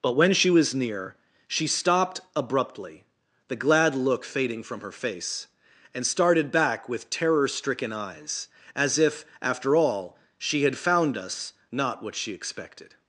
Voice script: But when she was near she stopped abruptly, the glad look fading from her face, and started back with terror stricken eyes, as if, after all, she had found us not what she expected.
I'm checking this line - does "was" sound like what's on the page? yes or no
yes